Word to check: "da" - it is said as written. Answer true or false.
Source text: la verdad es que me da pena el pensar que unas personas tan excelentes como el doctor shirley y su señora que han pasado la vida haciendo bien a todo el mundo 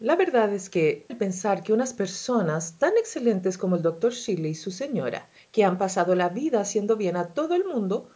false